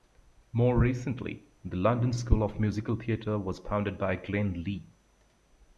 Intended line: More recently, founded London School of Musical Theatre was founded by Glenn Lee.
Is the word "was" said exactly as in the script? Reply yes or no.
yes